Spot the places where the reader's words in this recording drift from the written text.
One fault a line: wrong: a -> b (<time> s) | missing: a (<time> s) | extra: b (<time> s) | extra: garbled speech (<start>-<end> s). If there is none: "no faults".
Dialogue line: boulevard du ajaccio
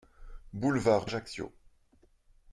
no faults